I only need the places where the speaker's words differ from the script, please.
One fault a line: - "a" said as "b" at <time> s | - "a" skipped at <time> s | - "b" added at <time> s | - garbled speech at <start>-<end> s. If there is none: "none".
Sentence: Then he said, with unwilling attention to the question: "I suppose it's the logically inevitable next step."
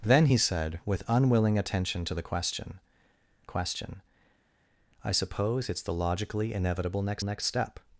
- "question" added at 3.5 s
- "next" added at 7.2 s